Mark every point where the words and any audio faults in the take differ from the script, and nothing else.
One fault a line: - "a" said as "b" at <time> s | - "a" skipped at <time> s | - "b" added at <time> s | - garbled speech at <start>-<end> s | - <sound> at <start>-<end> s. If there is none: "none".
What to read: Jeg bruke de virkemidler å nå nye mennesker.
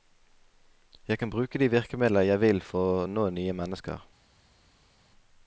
- "kan" added at 1.2 s
- "jeg vil for" added at 2.2 s